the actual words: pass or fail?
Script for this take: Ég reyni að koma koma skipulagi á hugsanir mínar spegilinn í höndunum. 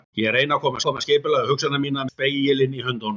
pass